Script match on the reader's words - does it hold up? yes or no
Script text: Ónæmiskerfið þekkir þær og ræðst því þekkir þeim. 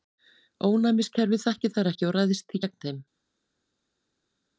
no